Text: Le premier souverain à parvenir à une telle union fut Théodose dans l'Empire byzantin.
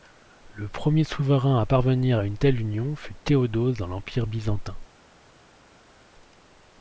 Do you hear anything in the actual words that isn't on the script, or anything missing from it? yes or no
no